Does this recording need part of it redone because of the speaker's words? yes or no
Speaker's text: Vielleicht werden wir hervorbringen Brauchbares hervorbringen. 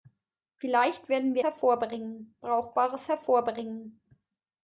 no